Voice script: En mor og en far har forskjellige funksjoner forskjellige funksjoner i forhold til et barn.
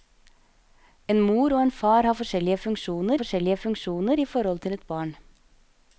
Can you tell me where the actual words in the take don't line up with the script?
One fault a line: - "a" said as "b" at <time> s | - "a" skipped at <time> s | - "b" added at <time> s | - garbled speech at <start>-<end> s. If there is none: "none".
none